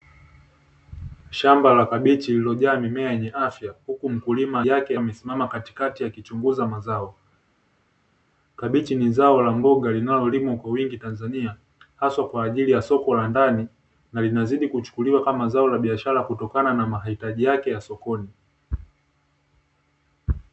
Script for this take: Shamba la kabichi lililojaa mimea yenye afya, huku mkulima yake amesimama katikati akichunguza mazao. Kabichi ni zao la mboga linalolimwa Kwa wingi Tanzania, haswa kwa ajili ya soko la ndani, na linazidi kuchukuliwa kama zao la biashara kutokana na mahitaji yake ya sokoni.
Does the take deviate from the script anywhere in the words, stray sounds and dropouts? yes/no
no